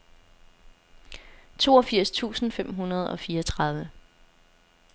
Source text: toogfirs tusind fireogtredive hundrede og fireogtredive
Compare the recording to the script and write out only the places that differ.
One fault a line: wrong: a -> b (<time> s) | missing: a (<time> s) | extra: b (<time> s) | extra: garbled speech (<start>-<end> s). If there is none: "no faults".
wrong: fireogtredive -> fem (2.5 s)